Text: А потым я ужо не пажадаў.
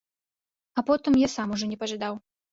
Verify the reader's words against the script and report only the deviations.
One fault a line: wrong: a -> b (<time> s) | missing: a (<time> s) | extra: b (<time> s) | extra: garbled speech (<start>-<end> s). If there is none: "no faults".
extra: сам (1.4 s)